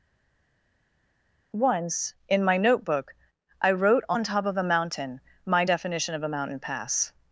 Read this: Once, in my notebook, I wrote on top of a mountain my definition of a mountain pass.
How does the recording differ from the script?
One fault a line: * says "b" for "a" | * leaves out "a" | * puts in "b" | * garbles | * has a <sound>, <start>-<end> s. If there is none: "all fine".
all fine